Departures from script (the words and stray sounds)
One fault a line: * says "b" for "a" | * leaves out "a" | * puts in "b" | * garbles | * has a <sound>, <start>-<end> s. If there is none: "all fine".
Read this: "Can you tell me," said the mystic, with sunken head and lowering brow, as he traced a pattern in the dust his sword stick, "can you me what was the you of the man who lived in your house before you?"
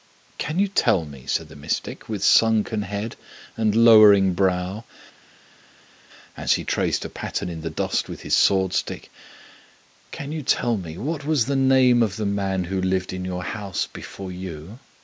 * puts in "with"
* puts in "tell"
* says "name" for "you"